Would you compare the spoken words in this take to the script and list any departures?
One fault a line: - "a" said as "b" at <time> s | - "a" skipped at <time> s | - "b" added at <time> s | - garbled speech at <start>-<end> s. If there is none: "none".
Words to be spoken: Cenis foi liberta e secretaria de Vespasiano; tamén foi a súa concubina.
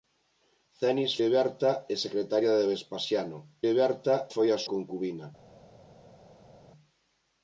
- "foi" skipped at 1.1 s
- "tamén" said as "liberta" at 3.7 s
- "súa" skipped at 4.6 s